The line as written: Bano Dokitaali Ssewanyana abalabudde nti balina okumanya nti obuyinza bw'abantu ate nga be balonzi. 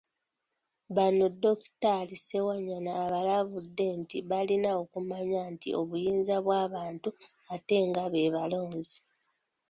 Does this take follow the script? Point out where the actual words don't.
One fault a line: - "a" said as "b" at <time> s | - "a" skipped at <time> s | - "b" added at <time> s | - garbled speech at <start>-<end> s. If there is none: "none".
none